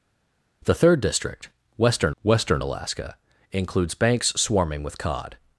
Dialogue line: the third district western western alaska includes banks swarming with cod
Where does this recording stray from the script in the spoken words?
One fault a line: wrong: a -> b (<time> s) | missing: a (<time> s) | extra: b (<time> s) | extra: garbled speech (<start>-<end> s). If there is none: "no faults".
no faults